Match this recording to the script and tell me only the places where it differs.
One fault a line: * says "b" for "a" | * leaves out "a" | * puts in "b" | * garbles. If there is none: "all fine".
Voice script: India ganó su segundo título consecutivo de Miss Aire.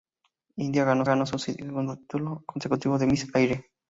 * puts in "ganó"